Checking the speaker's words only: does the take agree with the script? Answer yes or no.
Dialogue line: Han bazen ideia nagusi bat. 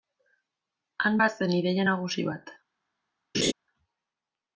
yes